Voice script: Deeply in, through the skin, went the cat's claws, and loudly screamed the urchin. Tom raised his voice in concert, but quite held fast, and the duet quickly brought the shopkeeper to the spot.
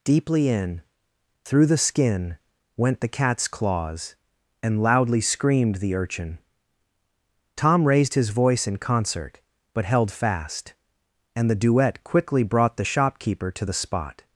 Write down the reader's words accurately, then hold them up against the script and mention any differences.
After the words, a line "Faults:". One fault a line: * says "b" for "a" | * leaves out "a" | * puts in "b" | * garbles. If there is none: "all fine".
Deeply in, through the skin, went the cat's claws, and loudly screamed the urchin. Tom raised his voice in concert, but held fast, and the duet quickly brought the shopkeeper to the spot.
Faults:
* leaves out "quite"